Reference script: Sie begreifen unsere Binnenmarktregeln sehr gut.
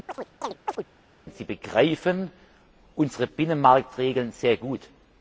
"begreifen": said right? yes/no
yes